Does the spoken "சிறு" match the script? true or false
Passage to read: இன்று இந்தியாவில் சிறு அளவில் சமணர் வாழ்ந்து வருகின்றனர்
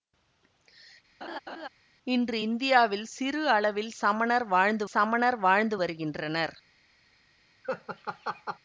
true